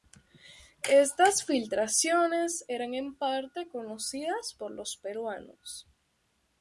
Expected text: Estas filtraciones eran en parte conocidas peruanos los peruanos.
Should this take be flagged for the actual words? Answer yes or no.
yes